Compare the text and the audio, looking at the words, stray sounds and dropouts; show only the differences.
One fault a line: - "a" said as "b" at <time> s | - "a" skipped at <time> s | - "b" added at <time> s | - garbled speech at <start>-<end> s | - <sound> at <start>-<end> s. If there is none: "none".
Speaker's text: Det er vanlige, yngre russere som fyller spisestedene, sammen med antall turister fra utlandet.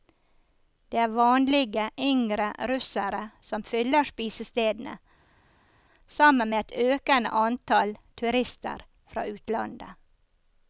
- "et økende" added at 6.6 s